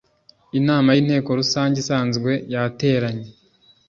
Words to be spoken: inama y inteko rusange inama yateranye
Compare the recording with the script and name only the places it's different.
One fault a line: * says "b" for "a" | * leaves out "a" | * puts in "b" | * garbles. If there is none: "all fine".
* says "isanzwe" for "inama"